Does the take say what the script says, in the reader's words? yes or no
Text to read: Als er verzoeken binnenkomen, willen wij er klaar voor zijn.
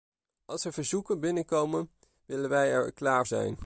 no